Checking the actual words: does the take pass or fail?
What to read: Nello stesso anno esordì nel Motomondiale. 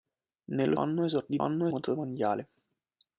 fail